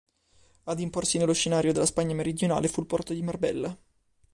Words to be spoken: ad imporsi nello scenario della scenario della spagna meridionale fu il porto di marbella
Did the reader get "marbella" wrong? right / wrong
right